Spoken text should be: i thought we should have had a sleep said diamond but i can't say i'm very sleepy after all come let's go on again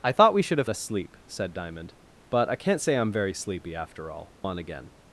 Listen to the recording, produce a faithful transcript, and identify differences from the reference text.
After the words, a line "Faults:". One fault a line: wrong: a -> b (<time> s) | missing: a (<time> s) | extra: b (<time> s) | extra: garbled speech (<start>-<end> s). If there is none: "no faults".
i thought we should have a sleep said diamond but i can't say i'm very sleepy after all on again
Faults:
missing: had (0.7 s)
missing: come let's go (4.3 s)